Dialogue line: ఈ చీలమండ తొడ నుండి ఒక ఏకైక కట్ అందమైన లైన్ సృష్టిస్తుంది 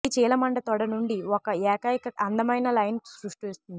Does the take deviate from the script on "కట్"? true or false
true